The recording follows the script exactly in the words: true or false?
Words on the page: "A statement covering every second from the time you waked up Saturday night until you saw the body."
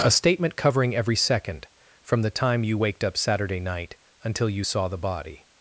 true